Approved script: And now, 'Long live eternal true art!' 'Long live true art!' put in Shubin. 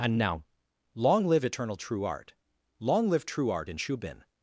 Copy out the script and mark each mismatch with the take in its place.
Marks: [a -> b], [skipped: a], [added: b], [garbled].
And now, 'Long live eternal true art!' 'Long live true art!' [skipped: put] in Shubin.